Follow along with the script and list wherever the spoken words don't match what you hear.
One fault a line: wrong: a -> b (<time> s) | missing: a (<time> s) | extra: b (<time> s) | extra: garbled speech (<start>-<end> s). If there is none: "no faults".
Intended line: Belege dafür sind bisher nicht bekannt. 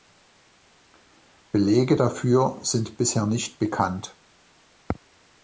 no faults